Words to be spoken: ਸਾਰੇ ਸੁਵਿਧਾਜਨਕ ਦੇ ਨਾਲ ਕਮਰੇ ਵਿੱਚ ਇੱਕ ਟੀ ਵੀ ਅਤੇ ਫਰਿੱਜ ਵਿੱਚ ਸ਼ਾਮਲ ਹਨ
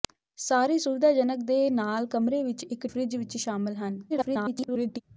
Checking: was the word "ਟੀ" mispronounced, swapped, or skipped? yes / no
yes